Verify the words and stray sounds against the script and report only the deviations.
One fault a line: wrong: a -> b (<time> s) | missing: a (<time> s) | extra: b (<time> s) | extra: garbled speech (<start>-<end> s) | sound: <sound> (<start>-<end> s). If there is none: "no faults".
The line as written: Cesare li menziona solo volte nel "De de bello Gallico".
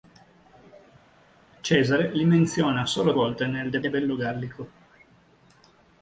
no faults